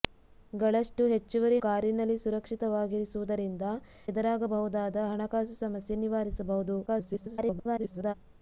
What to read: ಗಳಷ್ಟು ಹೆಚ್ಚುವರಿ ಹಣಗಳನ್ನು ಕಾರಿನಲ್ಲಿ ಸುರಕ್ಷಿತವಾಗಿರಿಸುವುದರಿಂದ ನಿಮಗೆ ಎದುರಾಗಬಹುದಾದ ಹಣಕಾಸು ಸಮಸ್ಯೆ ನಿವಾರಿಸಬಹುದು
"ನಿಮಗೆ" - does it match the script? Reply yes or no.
no